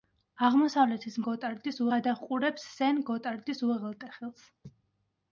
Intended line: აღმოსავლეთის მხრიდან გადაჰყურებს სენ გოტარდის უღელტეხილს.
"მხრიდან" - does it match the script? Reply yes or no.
no